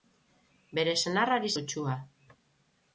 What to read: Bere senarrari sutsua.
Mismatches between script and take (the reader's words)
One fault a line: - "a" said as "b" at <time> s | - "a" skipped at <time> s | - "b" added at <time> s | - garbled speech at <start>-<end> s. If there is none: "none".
none